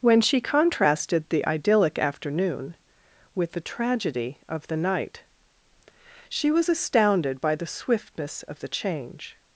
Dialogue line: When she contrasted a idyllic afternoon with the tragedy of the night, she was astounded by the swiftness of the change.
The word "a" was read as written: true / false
false